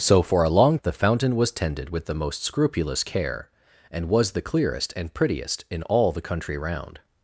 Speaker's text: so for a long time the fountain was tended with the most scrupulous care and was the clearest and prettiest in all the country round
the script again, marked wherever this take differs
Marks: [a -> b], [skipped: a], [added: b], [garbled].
so for a long [skipped: time] the fountain was tended with the most scrupulous care and was the clearest and prettiest in all the country round